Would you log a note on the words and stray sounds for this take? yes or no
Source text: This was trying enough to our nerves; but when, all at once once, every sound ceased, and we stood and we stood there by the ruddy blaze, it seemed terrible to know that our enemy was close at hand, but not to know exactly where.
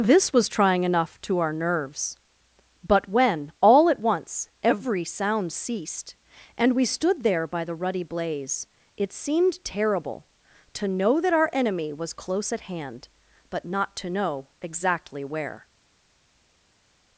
yes